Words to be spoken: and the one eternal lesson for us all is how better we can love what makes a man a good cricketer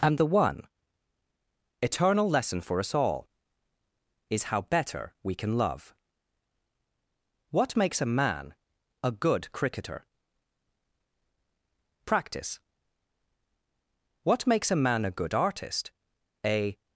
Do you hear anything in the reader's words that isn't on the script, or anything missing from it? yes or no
yes